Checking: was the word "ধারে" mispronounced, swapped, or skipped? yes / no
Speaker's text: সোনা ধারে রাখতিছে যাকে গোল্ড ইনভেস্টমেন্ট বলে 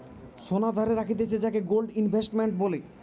no